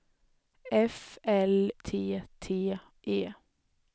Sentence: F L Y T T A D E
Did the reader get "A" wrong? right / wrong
wrong